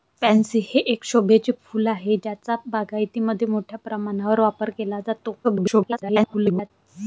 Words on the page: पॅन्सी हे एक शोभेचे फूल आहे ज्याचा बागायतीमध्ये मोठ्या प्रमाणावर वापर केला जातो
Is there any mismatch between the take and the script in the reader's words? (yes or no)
yes